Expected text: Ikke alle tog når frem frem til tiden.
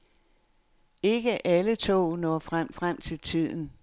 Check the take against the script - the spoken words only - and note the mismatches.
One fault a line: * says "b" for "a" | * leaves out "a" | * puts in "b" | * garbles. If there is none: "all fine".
all fine